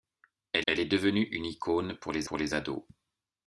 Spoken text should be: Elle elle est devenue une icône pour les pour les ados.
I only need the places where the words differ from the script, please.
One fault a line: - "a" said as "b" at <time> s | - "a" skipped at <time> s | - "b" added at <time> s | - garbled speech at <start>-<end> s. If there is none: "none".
none